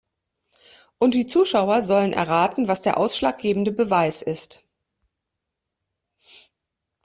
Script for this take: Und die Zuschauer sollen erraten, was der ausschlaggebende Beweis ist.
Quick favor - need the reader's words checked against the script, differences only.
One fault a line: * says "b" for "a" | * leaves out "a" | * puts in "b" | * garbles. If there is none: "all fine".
all fine